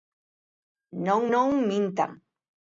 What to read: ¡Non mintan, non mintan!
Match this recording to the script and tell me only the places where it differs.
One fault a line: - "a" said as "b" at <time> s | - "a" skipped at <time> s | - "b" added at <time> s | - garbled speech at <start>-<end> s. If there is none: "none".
- "mintan" skipped at 1.2 s